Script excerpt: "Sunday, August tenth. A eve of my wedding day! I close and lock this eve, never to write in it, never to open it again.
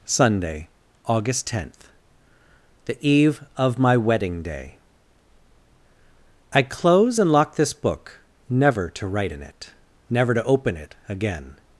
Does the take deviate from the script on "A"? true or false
true